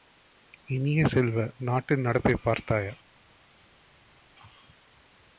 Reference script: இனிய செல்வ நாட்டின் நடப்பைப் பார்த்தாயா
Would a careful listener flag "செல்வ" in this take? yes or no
no